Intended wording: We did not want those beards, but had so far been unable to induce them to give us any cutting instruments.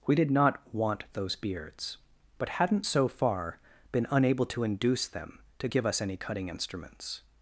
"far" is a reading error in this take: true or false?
false